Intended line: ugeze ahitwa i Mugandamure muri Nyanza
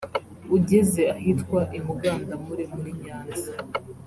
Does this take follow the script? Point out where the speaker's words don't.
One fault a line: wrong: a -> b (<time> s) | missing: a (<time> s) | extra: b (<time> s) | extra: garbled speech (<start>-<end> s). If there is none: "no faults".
no faults